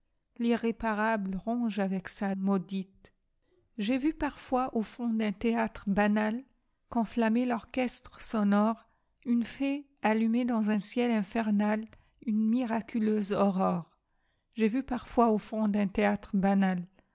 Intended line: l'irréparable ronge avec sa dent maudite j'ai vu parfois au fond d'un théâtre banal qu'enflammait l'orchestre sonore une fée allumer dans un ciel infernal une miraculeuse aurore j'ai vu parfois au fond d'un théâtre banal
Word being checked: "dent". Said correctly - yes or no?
no